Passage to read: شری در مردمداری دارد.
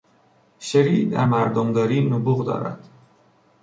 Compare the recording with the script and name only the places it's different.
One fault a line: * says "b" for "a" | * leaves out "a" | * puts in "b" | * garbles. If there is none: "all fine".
* puts in "نبوغ"